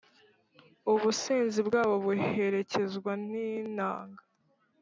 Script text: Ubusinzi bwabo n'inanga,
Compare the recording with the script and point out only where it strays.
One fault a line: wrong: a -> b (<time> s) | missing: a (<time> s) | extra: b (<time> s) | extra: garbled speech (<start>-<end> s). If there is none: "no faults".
extra: buherekezwa (2.0 s)